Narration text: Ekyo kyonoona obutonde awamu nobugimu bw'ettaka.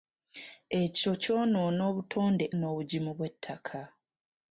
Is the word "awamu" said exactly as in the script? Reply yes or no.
no